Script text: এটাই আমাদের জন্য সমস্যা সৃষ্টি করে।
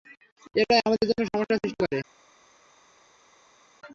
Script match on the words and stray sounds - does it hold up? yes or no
yes